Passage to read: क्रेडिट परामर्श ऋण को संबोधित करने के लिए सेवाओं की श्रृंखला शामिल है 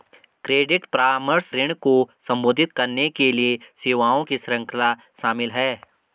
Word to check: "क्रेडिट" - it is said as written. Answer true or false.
true